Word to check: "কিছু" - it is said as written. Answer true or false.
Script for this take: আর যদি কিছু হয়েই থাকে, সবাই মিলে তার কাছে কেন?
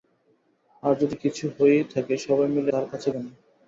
true